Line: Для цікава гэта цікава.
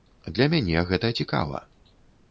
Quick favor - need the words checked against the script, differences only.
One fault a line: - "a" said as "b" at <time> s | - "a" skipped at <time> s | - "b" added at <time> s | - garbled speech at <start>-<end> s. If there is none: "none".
- "цікава" said as "мяне" at 0.5 s